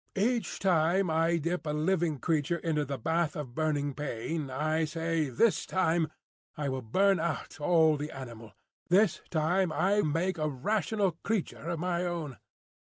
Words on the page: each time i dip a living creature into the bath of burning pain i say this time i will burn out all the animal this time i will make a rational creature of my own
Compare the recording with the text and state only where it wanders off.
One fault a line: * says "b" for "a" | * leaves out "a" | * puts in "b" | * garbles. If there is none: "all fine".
* leaves out "will"